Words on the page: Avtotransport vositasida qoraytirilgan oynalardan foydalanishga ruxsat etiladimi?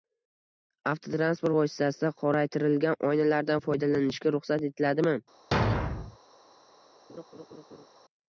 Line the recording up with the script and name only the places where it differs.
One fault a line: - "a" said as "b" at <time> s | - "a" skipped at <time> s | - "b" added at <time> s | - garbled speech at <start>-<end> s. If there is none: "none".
none